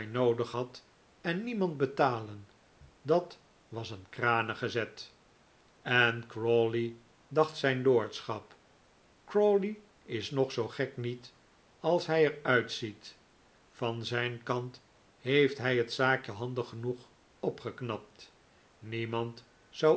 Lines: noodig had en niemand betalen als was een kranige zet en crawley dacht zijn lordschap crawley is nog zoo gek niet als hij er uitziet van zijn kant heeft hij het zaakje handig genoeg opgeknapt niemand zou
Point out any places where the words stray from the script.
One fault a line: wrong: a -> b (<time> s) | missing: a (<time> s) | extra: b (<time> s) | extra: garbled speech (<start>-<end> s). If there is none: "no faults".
wrong: als -> dat (3.0 s)